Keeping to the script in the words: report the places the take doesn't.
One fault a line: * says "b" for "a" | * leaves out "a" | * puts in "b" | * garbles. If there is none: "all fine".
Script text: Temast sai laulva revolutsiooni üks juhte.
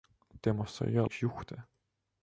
* leaves out "laulva revolutsiooni"